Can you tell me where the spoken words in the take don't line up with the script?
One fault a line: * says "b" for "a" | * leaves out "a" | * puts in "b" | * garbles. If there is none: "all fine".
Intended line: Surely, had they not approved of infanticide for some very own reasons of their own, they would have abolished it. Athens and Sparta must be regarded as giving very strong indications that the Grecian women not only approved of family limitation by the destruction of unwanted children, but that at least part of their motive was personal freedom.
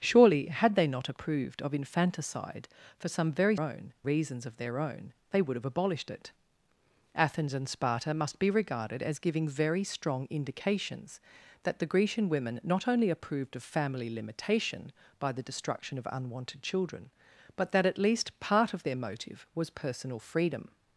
all fine